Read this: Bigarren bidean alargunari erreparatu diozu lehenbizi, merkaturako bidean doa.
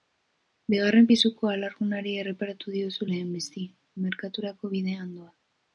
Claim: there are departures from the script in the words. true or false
true